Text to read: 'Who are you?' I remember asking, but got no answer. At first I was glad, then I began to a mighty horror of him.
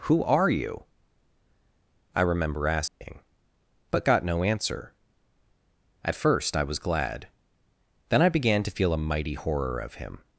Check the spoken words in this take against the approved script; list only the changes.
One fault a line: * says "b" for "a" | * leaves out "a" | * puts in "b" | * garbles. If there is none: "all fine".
* puts in "feel"